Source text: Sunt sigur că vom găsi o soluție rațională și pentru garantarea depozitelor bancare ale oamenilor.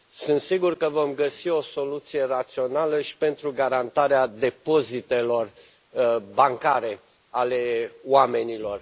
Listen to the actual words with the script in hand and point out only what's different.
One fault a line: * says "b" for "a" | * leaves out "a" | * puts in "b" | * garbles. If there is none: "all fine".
all fine